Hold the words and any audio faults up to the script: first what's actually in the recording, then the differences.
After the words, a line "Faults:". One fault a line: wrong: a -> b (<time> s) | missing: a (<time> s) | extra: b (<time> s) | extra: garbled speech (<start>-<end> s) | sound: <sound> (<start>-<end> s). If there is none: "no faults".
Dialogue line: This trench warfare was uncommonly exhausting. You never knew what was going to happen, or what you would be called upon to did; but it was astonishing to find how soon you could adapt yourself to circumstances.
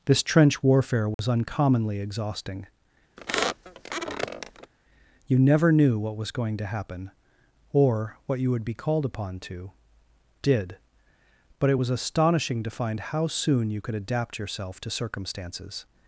This trench warfare was uncommonly exhausting. You never knew what was going to happen, or what you would be called upon to did; but it was astonishing to find how soon you could adapt yourself to circumstances.
Faults:
sound: dropout (1.1-1.2 s)
sound: squeak (3.2-4.7 s)